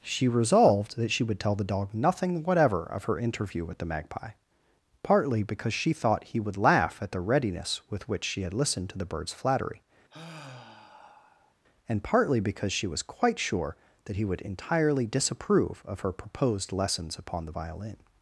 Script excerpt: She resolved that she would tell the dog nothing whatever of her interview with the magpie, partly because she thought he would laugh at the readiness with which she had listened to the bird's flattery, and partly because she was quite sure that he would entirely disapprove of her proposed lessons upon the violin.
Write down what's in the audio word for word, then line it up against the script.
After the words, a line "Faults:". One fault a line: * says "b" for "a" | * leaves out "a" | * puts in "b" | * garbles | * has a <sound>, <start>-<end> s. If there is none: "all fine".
She resolved that she would tell the dog nothing whatever of her interview with the magpie, partly because she thought he would laugh at the readiness with which she had listened to the bird's flattery, and partly because she was quite sure that he would entirely disapprove of her proposed lessons upon the violin.
Faults:
* has a sigh, 10.1-11.5 s